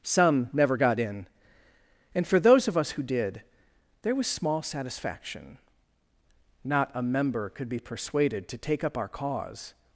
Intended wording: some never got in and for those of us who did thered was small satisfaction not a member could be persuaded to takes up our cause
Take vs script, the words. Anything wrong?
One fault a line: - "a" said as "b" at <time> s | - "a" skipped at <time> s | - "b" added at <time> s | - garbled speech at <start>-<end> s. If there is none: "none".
- "thered" said as "there" at 4.0 s
- "takes" said as "take" at 8.6 s